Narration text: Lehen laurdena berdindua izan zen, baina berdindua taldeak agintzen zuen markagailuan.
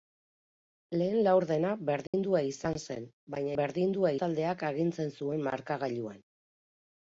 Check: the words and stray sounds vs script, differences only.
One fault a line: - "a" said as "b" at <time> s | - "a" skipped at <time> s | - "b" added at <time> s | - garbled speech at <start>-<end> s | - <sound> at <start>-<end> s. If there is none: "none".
- dropout at 2.1-2.1 s